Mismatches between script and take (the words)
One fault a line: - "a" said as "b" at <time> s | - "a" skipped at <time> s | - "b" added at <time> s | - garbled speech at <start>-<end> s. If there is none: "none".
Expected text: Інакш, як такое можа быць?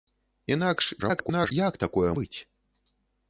- garbled speech at 1.0-1.5 s
- "можа" skipped at 2.1 s